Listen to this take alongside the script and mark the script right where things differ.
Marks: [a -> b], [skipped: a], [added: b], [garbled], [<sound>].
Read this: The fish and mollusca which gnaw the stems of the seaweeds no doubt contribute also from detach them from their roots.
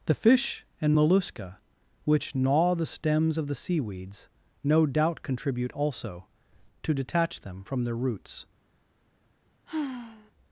The fish and mollusca which gnaw the stems of the seaweeds no doubt contribute also [from -> to] detach them from their roots. [sigh]